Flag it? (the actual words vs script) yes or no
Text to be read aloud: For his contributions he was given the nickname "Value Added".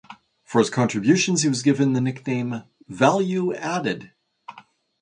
no